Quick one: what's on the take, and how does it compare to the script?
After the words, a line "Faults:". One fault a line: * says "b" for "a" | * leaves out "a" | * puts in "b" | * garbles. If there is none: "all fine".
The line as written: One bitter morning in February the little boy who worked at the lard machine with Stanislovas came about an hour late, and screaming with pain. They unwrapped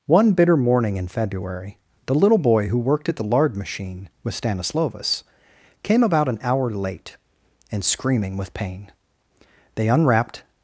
One bitter morning in February the little boy who worked at the lard machine with Stanislovas came about an hour late, and screaming with pain. They unwrapped
Faults:
all fine